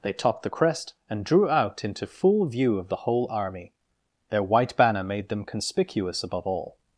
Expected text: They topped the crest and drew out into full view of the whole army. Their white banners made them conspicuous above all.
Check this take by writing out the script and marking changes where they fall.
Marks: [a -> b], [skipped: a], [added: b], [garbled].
They topped the crest and drew out into full view of the whole army. Their white [banners -> banner] made them conspicuous above all.